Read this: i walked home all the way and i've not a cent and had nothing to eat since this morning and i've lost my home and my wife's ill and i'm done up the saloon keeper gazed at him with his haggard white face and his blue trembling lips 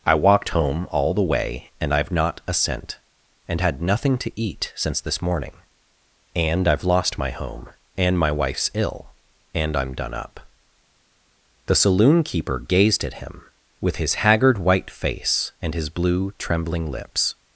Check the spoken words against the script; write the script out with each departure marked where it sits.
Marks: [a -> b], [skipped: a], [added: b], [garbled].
i walked home all the way and i've not a cent and had nothing to eat since this morning and i've lost my home and my wife's ill and i'm done up the saloon keeper gazed at him with his haggard white face and his blue trembling lips